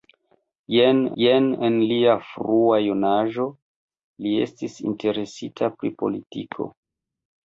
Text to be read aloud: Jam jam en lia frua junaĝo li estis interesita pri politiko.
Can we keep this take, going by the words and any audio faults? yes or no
yes